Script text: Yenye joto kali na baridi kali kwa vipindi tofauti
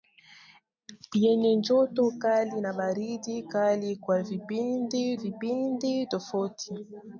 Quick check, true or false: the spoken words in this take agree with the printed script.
false